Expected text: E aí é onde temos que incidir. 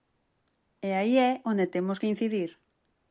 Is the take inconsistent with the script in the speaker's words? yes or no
no